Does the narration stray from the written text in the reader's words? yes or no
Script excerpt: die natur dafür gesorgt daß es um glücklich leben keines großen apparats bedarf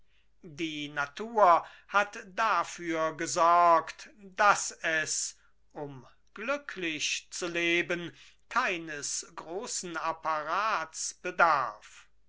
yes